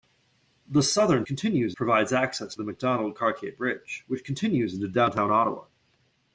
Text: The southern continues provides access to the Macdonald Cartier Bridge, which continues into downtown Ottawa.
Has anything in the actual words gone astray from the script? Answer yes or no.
no